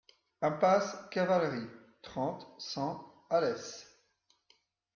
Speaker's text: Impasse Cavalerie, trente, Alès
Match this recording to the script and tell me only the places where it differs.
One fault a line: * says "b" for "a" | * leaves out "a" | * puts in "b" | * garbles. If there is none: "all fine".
* puts in "cent"